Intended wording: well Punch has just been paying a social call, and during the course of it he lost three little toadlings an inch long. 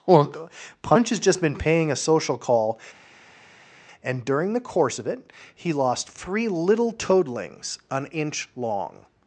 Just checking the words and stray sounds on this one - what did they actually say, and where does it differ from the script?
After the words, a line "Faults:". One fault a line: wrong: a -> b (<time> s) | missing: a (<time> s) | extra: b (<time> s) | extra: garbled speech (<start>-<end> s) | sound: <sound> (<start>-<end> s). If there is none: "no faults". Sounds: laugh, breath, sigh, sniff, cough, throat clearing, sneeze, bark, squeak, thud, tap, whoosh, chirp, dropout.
well Punch has just been paying a social call, and during the course of it he lost three little toadlings an inch long.
Faults:
no faults